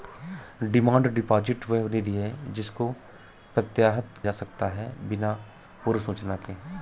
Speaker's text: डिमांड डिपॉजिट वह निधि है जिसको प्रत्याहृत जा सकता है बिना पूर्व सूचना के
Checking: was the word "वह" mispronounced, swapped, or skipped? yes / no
no